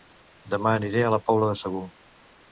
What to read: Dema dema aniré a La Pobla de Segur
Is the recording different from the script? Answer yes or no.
yes